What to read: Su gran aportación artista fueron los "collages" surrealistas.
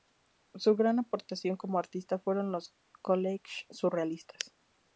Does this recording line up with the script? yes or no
no